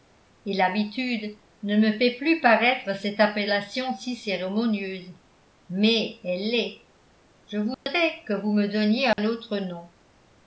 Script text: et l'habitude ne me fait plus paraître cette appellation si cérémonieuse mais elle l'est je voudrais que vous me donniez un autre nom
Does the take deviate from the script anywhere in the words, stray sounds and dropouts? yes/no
yes